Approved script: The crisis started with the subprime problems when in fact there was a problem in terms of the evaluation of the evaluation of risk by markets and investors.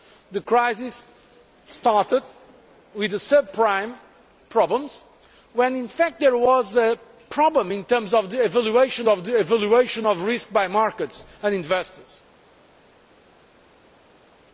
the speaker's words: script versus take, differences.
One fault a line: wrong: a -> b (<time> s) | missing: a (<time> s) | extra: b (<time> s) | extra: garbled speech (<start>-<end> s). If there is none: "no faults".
no faults